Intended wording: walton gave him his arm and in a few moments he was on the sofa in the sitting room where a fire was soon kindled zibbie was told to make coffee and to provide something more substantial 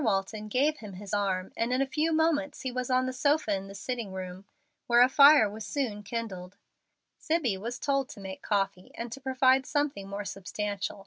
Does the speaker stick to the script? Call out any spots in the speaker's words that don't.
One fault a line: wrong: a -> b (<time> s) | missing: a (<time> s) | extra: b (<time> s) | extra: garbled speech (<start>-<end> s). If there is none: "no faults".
no faults